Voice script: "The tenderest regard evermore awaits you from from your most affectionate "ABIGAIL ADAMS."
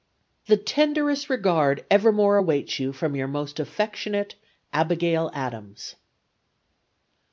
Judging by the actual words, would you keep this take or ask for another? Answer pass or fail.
fail